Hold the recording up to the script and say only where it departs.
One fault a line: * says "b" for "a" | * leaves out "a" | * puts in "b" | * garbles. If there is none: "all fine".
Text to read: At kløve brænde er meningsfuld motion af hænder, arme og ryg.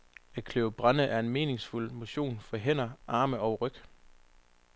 * says "for" for "af"